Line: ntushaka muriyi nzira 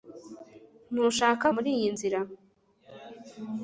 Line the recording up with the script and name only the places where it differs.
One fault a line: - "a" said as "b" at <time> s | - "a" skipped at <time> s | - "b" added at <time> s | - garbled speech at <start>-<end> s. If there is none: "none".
none